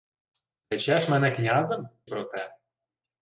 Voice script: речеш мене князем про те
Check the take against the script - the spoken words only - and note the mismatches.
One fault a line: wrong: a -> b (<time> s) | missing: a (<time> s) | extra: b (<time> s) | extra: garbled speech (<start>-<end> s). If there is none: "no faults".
no faults